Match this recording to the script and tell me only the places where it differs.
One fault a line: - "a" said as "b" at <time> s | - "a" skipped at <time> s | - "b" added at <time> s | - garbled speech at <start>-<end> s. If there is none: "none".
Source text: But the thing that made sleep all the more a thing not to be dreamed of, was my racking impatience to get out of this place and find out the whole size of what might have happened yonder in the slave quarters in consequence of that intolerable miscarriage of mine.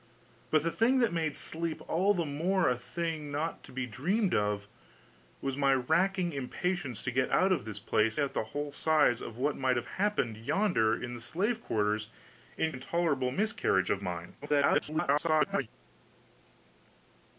- "and find" skipped at 8.2 s
- "consequence of that" skipped at 12.7 s
- garbled speech at 14.4-15.7 s